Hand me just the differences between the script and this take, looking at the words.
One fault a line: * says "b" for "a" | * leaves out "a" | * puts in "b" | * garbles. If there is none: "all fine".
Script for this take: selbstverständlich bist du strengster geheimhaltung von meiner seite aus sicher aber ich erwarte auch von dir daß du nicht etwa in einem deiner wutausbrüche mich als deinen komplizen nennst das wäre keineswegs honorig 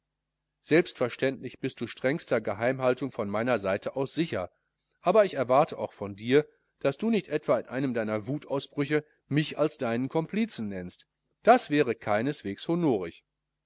all fine